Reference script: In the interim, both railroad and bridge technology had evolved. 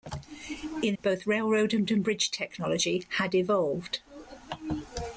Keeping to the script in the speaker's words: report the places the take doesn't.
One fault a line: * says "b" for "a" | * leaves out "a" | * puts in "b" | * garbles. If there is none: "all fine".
* leaves out "the interim"
* puts in "and"